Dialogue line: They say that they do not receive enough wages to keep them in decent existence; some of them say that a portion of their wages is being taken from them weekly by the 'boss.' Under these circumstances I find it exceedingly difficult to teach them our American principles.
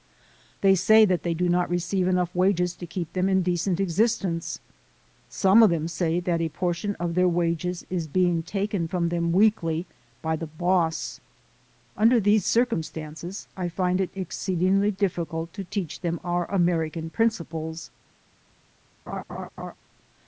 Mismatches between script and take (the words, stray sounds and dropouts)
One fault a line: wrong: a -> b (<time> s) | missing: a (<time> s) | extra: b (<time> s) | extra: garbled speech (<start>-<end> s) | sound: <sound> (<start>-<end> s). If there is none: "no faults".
sound: laugh (19.1-19.8 s)